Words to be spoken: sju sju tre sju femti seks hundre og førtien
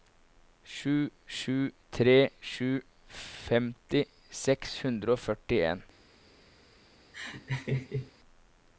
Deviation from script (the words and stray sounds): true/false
true